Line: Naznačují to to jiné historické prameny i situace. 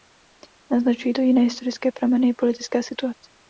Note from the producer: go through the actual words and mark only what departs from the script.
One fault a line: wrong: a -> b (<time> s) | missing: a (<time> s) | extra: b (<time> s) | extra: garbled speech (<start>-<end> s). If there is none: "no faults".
missing: to (1.2 s)
extra: politická (2.3 s)